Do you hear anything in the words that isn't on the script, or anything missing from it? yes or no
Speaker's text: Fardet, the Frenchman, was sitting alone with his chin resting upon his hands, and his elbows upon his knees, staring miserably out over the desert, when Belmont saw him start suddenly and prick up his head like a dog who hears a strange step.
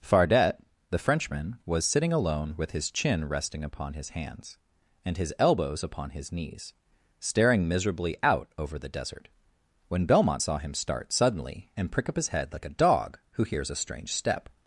no